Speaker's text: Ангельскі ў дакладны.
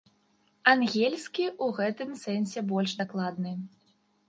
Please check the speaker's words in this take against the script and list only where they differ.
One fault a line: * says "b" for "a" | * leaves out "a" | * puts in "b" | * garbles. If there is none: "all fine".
* puts in "гэтым сэнсе больш"